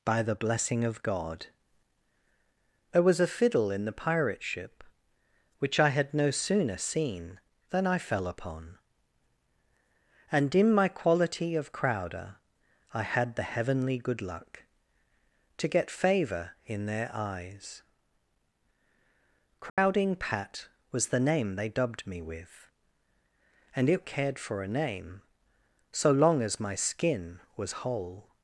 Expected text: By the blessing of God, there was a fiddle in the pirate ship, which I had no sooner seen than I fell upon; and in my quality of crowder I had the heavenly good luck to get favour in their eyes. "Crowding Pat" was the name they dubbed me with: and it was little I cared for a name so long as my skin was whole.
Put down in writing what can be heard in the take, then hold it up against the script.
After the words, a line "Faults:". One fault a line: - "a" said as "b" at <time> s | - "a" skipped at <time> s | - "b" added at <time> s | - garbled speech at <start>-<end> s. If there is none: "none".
By the blessing of God, there was a fiddle in the pirate ship, which I had no sooner seen than I fell upon; and in my quality of crowder I had the heavenly good luck to get favour in their eyes. "Crowding Pat" was the name they dubbed me with: and it cared for a name so long as my skin was whole.
Faults:
- "was little I" skipped at 24.1 s